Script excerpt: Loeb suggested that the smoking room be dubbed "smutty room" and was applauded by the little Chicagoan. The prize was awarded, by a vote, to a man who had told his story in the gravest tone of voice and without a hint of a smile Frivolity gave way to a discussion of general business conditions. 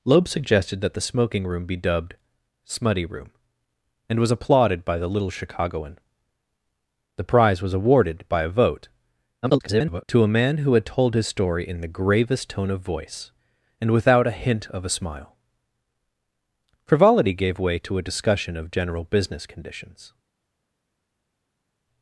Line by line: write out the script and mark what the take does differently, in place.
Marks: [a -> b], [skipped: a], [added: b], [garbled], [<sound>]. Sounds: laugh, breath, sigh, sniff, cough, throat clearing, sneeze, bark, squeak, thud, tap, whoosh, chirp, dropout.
Loeb suggested that the smoking room be dubbed "smutty room" and was applauded by the little Chicagoan. The prize was awarded, by a vote, [garbled] to a man who had told his story in the gravest tone of voice and without a hint of a smile Frivolity gave way to a discussion of general business conditions.